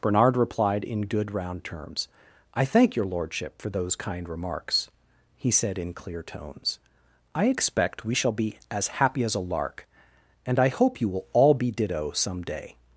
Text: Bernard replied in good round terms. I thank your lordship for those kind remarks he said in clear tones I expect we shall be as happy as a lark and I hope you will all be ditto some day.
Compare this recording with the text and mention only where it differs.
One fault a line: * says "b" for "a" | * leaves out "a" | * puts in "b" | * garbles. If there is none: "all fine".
all fine